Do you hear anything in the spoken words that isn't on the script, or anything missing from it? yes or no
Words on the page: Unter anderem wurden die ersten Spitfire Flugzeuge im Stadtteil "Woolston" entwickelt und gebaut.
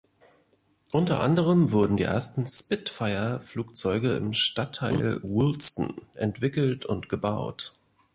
no